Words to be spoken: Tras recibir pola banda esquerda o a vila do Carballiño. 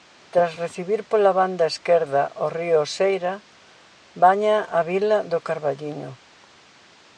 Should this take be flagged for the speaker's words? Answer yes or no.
yes